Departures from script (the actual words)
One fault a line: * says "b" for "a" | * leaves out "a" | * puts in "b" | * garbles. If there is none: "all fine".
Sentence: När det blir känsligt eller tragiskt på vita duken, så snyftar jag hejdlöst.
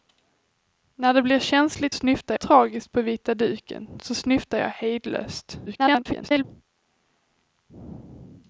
* says "snyftar" for "eller"
* garbles